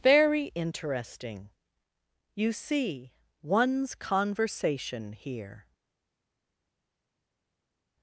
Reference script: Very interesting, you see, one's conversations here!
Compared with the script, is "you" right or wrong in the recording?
right